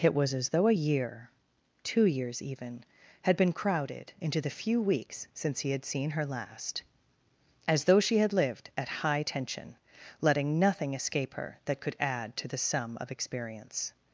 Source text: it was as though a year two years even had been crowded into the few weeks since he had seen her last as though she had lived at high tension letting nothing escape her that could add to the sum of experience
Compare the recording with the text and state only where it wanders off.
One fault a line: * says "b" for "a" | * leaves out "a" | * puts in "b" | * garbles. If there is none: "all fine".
all fine